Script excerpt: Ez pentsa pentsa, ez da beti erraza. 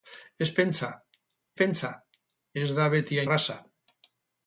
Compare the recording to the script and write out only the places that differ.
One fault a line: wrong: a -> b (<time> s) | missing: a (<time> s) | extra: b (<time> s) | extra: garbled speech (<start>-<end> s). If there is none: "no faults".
no faults